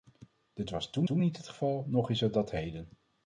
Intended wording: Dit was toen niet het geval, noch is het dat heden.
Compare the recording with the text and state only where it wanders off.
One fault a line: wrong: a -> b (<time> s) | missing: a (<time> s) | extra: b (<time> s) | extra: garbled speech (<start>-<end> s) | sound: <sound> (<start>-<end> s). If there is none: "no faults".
extra: toen (1.0 s)